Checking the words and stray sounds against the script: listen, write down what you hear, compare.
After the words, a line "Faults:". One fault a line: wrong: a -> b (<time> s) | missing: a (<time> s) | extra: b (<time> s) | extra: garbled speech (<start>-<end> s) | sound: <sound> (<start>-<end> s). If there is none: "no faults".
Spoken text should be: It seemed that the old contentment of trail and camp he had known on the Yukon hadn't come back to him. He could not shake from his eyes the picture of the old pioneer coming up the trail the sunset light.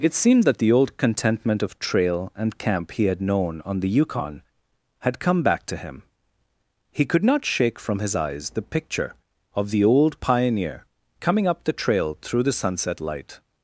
It seemed that the old contentment of trail and camp he had known on the Yukon had come back to him. He could not shake from his eyes the picture of the old pioneer coming up the trail through the sunset light.
Faults:
wrong: hadn't -> had (5.0 s)
extra: through (12.2 s)